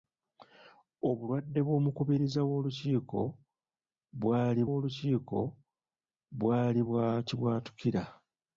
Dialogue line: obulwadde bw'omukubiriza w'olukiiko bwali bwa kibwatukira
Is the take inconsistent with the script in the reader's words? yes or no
yes